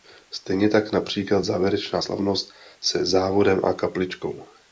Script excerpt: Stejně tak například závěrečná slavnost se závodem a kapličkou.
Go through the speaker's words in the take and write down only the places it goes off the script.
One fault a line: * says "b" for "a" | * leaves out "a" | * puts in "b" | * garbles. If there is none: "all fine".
all fine